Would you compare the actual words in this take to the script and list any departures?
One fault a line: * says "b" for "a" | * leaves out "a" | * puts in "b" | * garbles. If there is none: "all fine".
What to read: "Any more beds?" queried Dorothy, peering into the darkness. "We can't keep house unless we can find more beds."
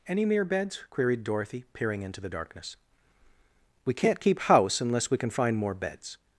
* says "mere" for "more"